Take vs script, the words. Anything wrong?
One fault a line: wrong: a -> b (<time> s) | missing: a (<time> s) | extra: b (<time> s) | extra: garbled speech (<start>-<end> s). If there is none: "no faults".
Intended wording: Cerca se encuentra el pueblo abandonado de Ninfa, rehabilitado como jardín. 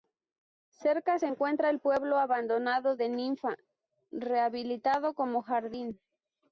no faults